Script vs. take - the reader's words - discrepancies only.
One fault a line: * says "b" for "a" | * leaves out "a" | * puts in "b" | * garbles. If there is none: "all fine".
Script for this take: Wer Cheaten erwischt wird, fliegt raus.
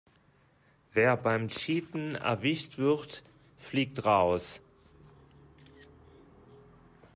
* puts in "beim"